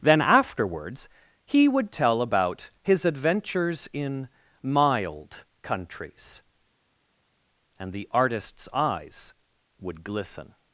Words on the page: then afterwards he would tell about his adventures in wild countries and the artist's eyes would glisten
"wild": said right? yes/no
no